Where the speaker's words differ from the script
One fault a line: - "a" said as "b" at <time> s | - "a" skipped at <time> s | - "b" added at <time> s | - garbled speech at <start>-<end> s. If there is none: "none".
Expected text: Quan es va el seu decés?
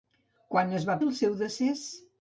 none